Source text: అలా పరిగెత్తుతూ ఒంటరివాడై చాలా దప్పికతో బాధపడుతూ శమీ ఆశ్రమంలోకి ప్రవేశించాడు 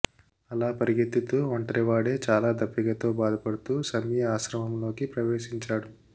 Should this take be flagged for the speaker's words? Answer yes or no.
no